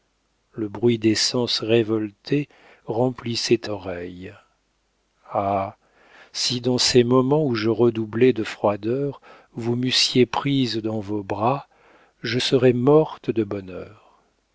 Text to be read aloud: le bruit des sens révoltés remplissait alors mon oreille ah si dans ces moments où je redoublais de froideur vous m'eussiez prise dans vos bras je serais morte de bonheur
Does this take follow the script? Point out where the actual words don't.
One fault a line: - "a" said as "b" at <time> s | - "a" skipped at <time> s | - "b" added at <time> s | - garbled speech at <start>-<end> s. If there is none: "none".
- "alors mon" skipped at 3.7 s